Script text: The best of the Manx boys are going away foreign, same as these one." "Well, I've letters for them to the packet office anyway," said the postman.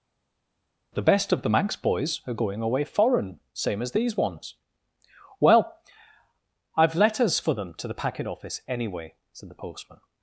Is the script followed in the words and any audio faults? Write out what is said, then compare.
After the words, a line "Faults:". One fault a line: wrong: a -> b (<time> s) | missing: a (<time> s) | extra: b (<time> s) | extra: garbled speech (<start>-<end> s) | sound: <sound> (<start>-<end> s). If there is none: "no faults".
The best of the Manx boys are going away foreign, same as these ones." "Well, I've letters for them to the packet office anyway," said the postman.
Faults:
wrong: one -> ones (4.2 s)